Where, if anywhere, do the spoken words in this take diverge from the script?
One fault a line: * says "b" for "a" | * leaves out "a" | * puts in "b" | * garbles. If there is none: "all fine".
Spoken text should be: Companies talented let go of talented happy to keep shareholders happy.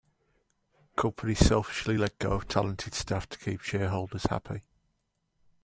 * says "selfishly" for "talented"
* says "staff" for "happy"